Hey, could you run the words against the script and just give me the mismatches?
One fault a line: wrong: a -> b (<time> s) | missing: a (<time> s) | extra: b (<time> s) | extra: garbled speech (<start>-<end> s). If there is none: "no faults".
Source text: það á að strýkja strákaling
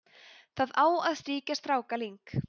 no faults